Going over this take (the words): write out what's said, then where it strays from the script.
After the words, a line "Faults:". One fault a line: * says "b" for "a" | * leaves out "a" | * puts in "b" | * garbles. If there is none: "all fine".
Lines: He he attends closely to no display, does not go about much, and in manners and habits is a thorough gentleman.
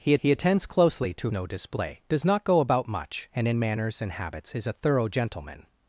He he attends closely to no display, does not go about much, and in manners and habits is a thorough gentleman.
Faults:
all fine